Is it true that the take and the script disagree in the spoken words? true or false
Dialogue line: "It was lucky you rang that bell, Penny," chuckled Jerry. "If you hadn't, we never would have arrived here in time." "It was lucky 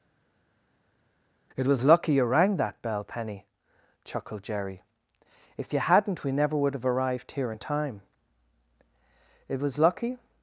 false